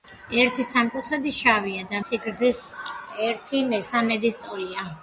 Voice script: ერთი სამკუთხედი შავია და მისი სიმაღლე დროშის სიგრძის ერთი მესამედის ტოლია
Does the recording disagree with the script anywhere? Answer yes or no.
yes